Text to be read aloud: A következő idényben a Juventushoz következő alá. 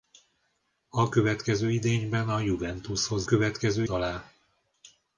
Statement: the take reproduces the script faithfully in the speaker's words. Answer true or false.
true